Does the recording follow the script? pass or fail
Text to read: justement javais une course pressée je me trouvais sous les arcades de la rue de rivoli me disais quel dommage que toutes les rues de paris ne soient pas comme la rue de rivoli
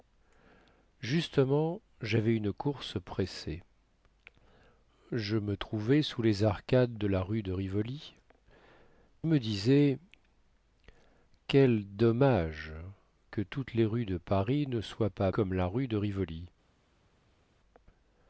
pass